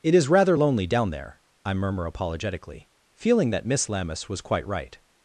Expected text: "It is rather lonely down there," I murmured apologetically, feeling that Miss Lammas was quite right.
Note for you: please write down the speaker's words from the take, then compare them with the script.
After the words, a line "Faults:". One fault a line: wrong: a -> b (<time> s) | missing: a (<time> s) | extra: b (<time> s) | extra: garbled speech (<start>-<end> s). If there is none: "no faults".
"It is rather lonely down there," I murmur apologetically, feeling that Miss Lammas was quite right.
Faults:
wrong: murmured -> murmur (1.7 s)